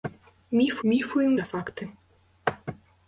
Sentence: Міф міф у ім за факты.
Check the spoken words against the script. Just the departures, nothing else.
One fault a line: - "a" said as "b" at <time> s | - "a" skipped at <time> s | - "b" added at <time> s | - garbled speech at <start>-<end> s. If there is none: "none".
none